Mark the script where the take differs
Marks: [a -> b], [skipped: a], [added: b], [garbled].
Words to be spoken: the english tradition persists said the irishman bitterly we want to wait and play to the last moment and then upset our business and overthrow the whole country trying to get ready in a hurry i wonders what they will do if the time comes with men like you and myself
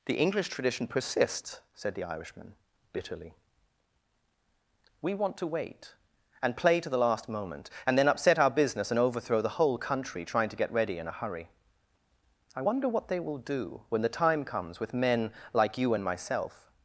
the english tradition persists said the irishman bitterly we want to wait and play to the last moment and then upset our business and overthrow the whole country trying to get ready in a hurry i [wonders -> wonder] what they will do [if -> when] the time comes with men like you and myself